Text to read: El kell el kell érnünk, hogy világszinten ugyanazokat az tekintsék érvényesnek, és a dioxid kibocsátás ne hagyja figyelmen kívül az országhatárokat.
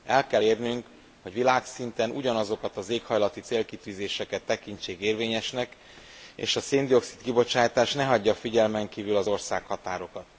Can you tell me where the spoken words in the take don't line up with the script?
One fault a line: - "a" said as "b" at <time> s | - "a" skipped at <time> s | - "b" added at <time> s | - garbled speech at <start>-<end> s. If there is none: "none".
- "el kell" skipped at 0.4 s
- "éghajlati célkitűzéseket" added at 2.9 s
- "szén" added at 6.6 s